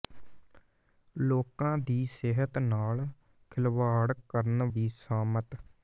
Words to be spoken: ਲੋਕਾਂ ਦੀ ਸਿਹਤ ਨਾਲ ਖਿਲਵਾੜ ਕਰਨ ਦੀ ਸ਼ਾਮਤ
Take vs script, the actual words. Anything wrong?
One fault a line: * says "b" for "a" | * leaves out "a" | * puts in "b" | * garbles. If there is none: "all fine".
all fine